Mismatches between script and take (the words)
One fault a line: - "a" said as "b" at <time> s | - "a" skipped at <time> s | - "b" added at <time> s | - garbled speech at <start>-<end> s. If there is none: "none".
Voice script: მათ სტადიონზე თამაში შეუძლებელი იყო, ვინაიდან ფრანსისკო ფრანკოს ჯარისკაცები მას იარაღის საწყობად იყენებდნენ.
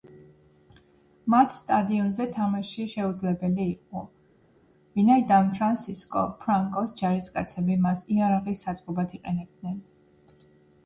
none